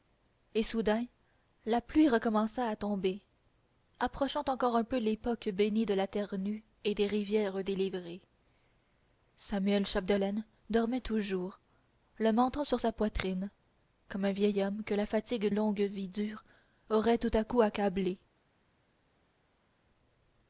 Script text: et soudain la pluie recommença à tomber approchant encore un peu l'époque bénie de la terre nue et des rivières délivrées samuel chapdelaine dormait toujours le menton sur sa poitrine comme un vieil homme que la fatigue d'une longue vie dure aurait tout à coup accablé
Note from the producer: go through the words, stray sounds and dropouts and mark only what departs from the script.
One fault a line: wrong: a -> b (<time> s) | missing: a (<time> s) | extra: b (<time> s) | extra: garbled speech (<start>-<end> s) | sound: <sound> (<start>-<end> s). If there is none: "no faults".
missing: d'une (15.5 s)